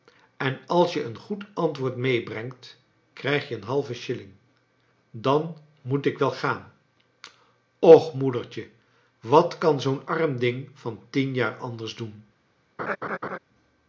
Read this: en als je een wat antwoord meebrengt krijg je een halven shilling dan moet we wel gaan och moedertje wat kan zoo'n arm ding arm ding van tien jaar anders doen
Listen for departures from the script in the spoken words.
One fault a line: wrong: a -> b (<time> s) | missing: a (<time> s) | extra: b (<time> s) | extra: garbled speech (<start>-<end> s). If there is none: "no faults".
wrong: wat -> goed (1.2 s)
wrong: we -> ik (6.0 s)
missing: arm ding (10.7 s)